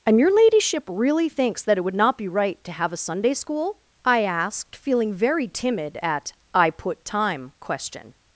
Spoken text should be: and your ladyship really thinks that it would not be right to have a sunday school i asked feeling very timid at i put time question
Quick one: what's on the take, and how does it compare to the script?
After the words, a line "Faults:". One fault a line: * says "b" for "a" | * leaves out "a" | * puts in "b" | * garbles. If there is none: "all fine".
and your ladyship really thinks that it would not be right to have a sunday school i asked feeling very timid at i put time question
Faults:
all fine